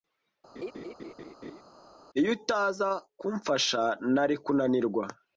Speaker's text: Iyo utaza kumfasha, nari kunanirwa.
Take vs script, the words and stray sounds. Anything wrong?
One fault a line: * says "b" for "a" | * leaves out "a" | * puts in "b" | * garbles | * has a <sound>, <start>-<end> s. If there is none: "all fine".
* has a laugh, 0.6-1.6 s